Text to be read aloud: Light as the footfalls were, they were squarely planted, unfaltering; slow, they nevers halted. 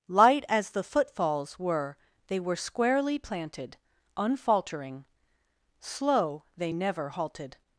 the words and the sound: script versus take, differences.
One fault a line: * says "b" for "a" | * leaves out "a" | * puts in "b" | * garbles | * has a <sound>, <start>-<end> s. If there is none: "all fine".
* says "never" for "nevers"